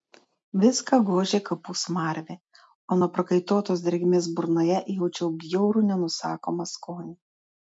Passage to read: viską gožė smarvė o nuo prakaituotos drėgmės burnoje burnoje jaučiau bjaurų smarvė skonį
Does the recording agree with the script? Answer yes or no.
no